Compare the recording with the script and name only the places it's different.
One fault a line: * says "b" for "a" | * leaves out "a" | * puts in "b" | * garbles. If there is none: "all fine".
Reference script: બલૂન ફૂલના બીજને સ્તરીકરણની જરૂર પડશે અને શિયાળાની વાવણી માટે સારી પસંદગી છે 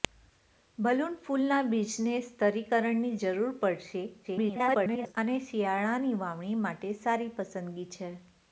* garbles